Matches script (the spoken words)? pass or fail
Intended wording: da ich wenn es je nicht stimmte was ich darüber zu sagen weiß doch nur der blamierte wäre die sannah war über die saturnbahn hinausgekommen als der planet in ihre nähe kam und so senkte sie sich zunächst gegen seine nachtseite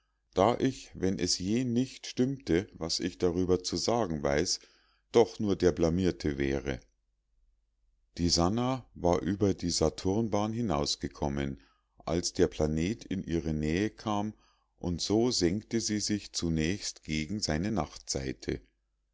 pass